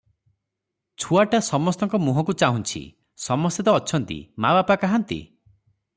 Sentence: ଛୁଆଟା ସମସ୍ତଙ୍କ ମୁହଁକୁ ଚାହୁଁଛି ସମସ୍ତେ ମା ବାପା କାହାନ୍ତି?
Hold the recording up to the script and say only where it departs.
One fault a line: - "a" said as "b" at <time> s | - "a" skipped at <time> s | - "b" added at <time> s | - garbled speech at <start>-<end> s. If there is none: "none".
- "ତ ଅଛନ୍ତି" added at 3.6 s